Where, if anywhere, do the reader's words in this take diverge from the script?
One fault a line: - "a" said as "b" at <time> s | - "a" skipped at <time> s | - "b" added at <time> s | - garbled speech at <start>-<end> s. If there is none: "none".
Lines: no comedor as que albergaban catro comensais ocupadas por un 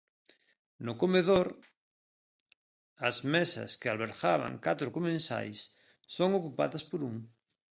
- "mesas" added at 3.3 s
- "son" added at 6.2 s